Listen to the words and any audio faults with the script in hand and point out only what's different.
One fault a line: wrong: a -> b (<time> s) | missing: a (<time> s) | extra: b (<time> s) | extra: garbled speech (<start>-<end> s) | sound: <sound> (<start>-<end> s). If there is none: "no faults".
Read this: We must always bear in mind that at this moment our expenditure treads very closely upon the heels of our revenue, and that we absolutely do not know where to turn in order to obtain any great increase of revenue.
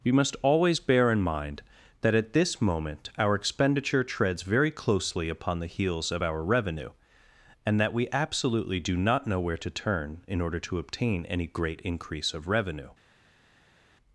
no faults